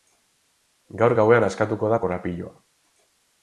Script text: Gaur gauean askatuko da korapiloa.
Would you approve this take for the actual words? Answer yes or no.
yes